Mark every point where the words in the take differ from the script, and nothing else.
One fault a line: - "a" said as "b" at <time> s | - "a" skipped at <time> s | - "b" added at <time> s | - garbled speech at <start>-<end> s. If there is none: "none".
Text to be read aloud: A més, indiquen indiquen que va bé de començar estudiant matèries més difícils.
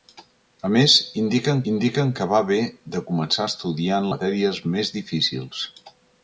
none